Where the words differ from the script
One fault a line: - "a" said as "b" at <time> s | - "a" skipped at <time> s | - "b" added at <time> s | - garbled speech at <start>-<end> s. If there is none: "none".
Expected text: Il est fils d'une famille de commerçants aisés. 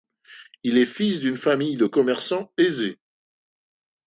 none